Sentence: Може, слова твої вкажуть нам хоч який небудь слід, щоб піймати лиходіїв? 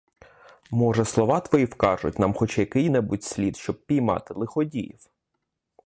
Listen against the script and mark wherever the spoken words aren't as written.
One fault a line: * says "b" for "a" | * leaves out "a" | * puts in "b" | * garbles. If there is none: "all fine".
all fine